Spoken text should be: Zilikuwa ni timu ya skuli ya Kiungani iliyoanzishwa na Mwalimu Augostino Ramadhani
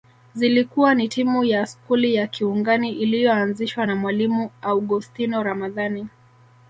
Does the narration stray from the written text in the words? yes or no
no